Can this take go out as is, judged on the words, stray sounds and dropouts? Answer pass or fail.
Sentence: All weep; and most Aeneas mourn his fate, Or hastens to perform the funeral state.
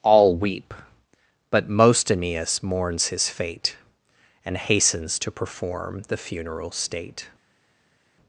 fail